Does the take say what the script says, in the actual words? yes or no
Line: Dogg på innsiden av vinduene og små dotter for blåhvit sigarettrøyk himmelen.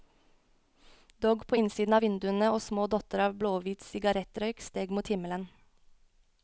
no